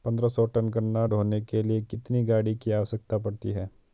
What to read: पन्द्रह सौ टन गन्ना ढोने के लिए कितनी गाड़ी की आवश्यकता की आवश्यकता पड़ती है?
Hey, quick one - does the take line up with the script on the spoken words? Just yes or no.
no